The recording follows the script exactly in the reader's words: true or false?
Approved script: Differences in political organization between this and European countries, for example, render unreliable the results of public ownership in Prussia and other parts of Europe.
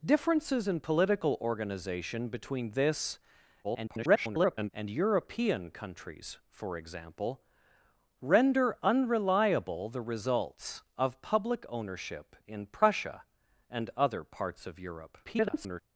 false